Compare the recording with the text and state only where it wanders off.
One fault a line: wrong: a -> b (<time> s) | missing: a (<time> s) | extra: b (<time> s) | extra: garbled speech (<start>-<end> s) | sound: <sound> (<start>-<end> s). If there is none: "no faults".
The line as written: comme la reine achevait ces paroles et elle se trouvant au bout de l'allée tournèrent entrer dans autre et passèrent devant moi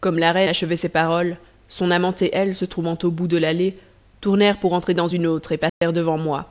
extra: son amant (1.7 s)
extra: pour (4.6 s)
extra: une (5.1 s)
sound: dropout (5.7-5.8 s)